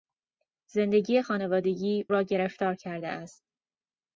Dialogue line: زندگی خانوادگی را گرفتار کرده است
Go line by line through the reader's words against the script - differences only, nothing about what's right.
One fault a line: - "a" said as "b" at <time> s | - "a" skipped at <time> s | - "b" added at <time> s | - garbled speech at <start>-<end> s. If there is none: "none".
none